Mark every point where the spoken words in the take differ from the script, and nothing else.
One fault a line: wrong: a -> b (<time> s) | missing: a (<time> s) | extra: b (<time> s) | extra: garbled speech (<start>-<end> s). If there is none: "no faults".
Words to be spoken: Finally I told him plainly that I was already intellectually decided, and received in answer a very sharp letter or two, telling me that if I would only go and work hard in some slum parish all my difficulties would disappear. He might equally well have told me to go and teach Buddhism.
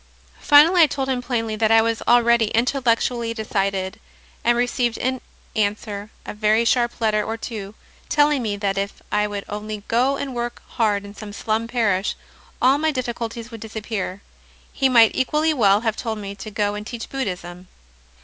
no faults